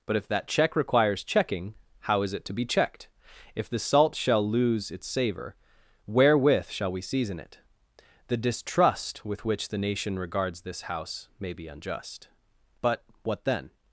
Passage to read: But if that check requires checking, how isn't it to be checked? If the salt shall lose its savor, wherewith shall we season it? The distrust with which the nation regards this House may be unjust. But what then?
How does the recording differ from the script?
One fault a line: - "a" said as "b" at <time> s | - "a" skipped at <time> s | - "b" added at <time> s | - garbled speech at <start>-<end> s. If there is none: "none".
- "isn't" said as "is" at 2.2 s